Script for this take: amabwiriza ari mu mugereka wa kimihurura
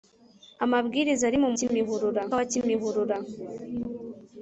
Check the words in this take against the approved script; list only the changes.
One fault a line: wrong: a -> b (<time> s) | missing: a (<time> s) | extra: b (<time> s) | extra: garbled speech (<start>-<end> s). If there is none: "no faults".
wrong: mugereka -> kimihurura (1.6 s)